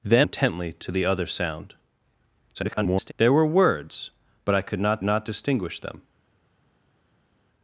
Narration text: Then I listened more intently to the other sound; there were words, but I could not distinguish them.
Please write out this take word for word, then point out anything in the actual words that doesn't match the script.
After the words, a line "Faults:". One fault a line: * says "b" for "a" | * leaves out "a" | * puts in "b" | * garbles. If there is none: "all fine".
Then intently to the other sound; [garbled] there were words, but I could not not distinguish them.
Faults:
* leaves out "I listened more"
* garbles
* puts in "not"